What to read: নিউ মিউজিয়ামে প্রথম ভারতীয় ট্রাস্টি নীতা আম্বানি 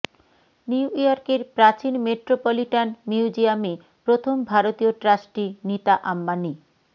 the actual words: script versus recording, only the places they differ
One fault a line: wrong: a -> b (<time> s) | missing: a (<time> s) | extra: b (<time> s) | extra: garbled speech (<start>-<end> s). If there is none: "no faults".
extra: ইয়র্কের প্রাচীন মেট্রোপলিটান (0.9 s)